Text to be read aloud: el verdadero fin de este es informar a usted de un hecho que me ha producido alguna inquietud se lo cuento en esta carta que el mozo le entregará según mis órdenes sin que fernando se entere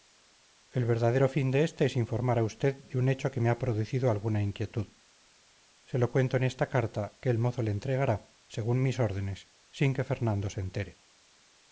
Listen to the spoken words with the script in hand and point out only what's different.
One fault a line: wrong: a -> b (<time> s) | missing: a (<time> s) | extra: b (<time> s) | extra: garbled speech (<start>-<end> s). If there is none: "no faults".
no faults